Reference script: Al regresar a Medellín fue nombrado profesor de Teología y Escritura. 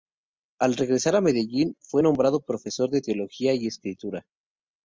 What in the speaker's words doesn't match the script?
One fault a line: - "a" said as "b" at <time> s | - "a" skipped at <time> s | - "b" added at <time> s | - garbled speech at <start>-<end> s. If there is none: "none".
none